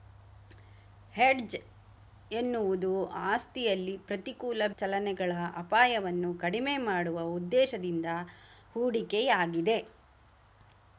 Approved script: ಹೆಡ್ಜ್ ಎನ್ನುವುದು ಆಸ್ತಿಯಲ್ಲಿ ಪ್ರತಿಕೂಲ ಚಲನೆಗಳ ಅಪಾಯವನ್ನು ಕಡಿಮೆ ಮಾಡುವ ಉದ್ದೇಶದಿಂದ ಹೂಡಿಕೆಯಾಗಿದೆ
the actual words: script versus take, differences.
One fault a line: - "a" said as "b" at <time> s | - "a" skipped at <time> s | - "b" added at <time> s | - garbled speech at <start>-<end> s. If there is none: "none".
none